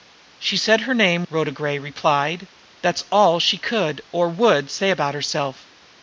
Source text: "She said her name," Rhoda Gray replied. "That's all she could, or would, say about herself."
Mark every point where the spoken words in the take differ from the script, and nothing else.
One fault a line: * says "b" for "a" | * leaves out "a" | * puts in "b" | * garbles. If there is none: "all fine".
all fine